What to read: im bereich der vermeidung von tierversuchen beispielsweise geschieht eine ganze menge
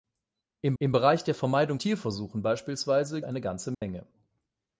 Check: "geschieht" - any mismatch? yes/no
yes